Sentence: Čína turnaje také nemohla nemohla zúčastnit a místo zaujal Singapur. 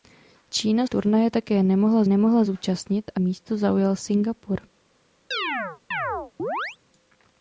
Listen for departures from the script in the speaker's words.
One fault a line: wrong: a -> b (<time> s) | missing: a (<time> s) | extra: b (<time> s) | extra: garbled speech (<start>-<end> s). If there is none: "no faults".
no faults